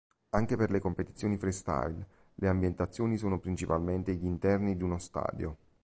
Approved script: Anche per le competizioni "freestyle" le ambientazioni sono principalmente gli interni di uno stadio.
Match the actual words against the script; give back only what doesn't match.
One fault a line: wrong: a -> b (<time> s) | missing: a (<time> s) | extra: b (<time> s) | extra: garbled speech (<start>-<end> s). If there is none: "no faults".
no faults